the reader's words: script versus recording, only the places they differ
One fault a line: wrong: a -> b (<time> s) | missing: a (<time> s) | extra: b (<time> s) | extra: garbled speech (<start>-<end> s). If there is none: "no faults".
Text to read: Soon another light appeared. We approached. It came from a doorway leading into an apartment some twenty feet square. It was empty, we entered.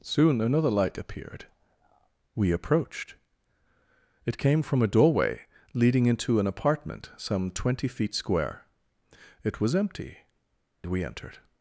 no faults